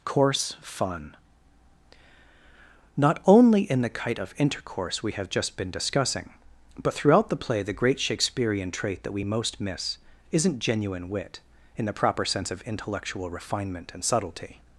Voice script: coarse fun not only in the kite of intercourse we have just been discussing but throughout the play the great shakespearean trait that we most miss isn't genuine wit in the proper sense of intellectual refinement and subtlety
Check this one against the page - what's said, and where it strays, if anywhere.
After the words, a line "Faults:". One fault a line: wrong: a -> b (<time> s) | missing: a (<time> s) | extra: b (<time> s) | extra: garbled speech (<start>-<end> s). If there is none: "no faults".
coarse fun not only in the kite of intercourse we have just been discussing but throughout the play the great shakespearean trait that we most miss isn't genuine wit in the proper sense of intellectual refinement and subtlety
Faults:
no faults